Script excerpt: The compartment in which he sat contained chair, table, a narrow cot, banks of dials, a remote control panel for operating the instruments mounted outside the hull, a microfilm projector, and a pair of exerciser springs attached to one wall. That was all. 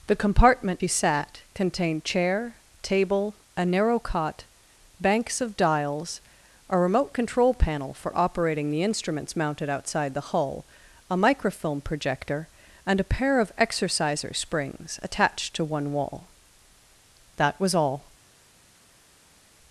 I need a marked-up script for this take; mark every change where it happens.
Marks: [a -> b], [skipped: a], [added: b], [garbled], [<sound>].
The compartment [skipped: in which] he sat contained chair, table, a narrow cot, banks of dials, a remote control panel for operating the instruments mounted outside the hull, a microfilm projector, and a pair of exerciser springs attached to one wall. That was all.